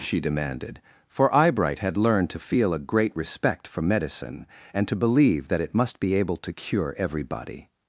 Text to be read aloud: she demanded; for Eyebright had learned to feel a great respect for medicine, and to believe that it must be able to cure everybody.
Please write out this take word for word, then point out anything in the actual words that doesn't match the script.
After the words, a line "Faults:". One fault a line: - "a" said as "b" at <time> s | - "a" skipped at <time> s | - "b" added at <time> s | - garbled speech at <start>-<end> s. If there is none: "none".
she demanded; for Eyebright had learned to feel a great respect for medicine, and to believe that it must be able to cure everybody.
Faults:
none